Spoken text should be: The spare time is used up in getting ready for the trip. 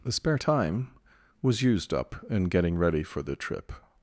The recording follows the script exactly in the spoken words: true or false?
false